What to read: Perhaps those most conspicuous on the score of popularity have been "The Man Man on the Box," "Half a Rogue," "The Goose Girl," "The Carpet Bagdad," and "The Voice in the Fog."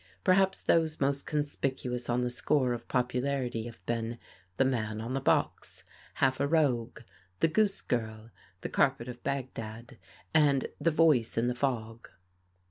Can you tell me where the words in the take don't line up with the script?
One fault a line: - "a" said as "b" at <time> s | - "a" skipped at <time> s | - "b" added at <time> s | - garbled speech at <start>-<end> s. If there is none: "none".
- "Man" skipped at 5.0 s
- "of" added at 9.1 s